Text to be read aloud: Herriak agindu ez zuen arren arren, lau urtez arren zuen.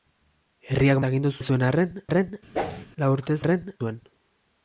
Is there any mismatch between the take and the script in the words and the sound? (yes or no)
yes